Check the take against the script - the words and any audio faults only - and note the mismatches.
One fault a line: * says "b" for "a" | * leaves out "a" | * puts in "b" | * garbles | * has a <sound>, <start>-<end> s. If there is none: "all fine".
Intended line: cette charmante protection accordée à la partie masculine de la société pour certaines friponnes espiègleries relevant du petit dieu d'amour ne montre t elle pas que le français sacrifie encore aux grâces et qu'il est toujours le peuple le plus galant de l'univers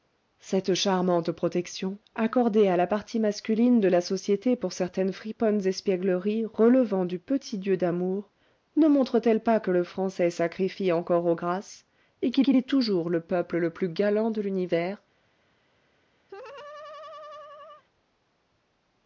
* puts in "qu'il"
* has a laugh, 16.3-17.8 s